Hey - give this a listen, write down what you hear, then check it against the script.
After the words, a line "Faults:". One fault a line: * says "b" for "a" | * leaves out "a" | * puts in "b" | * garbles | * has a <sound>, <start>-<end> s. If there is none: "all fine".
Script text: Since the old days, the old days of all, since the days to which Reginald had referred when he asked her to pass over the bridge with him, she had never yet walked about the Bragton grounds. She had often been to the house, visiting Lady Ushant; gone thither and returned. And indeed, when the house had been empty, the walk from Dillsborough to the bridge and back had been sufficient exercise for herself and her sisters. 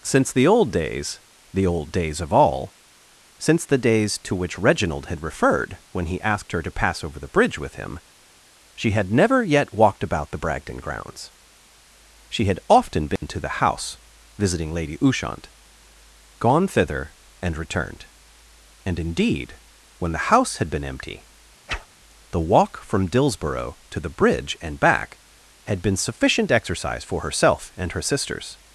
Since the old days, the old days of all, since the days to which Reginald had referred when he asked her to pass over the bridge with him, she had never yet walked about the Bragton grounds. She had often been to the house, visiting Lady Ushant; gone thither and returned. And indeed, when the house had been empty, the walk from Dillsborough to the bridge and back had been sufficient exercise for herself and her sisters.
Faults:
* has a dropout, 13.2-13.2 s
* has a whoosh, 21.7-21.9 s